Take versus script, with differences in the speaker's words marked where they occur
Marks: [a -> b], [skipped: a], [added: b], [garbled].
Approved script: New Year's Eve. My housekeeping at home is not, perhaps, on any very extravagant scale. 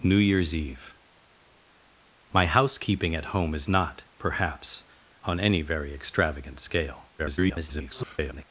New Year's Eve. My housekeeping at home is not, perhaps, on any very extravagant scale. [garbled]